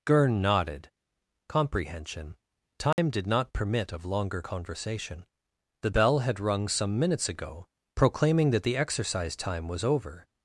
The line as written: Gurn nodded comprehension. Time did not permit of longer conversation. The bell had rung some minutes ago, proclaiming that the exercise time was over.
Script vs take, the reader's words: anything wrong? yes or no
no